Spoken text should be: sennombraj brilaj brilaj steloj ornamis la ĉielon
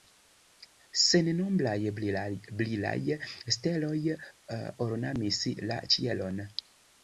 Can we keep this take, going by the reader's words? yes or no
no